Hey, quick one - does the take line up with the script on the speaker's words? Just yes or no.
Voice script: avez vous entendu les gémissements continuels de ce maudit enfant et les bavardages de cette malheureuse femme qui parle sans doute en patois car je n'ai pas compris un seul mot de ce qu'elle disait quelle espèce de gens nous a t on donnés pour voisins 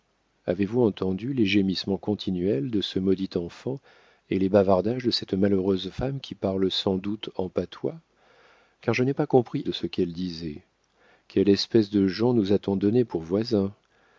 no